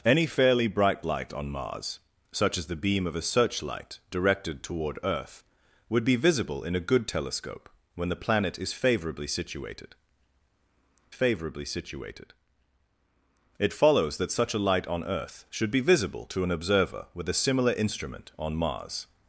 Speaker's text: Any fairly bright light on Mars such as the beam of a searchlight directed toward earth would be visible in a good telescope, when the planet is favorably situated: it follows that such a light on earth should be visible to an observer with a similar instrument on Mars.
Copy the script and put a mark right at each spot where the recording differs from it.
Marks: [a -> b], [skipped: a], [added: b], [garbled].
Any fairly bright light on Mars such as the beam of a searchlight directed toward earth would be visible in a good telescope, when the planet is favorably situated: [added: favorably situated] it follows that such a light on earth should be visible to an observer with a similar instrument on Mars.